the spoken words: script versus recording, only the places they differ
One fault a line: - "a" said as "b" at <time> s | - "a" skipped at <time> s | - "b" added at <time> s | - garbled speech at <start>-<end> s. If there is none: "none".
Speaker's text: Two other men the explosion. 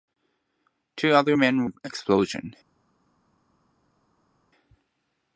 none